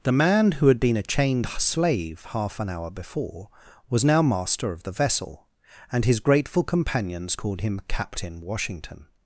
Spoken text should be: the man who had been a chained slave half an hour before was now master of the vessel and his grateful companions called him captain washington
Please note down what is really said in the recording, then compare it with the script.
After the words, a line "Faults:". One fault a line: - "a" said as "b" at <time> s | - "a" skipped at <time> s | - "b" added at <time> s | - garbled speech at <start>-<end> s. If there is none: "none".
the man who had been a chained slave half an hour before was now master of the vessel and his grateful companions called him captain washington
Faults:
none